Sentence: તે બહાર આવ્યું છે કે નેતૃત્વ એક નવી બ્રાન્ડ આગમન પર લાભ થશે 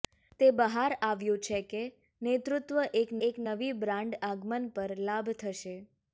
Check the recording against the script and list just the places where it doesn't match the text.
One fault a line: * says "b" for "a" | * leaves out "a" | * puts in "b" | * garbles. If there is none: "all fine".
* puts in "એક"